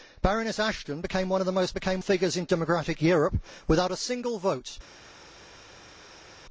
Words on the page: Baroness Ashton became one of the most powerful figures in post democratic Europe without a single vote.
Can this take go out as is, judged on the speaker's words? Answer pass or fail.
fail